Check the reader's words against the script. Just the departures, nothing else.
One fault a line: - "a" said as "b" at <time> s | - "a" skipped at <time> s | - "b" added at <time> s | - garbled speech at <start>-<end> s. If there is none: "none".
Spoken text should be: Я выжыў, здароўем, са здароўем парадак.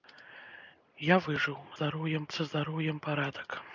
none